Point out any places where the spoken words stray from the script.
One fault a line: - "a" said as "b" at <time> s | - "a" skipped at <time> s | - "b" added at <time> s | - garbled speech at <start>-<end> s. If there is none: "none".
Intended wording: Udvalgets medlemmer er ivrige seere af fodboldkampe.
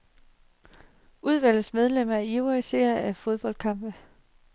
none